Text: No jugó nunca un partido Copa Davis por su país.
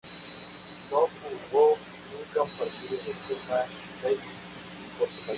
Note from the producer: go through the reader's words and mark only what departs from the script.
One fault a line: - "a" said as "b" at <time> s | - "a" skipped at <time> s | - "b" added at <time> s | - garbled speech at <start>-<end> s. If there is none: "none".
- "de" added at 3.0 s